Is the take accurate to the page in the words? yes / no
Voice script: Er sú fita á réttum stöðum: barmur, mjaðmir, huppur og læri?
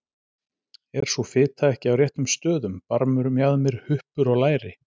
no